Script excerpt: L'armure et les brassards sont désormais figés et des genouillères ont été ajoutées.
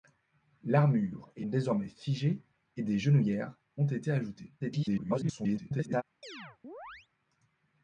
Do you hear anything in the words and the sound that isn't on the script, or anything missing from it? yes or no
yes